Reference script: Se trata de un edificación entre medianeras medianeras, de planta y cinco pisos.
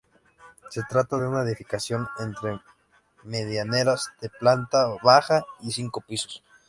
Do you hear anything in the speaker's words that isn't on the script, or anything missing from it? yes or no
yes